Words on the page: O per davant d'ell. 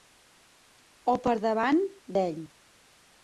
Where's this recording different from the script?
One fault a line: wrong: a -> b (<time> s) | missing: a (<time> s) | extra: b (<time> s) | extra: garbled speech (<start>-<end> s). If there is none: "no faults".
no faults